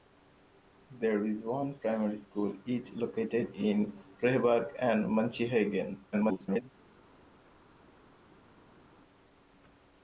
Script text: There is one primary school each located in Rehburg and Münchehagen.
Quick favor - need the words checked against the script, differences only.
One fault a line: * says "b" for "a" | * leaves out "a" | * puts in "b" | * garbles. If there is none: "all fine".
* garbles